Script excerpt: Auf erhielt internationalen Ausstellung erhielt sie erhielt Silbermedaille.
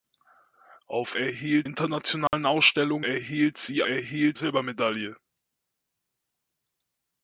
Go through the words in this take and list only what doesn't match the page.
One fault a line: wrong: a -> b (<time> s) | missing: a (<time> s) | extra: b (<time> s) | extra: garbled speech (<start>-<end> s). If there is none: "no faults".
no faults